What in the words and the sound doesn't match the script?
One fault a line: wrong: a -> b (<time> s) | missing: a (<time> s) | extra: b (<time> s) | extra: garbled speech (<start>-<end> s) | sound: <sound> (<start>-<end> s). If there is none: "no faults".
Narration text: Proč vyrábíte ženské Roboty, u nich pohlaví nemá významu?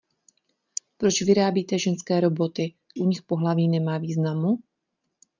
no faults